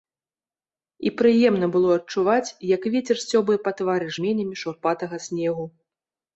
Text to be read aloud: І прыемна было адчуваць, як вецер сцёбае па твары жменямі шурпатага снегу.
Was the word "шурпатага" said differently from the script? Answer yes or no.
no